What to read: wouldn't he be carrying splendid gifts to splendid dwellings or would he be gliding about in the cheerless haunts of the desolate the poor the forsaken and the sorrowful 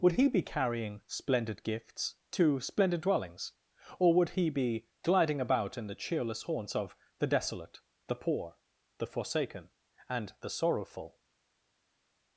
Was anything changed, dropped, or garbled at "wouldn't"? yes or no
yes